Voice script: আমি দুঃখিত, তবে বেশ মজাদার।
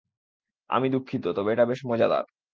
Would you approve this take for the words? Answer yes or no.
no